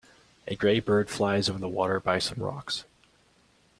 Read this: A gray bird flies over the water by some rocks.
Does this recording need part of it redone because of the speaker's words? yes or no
no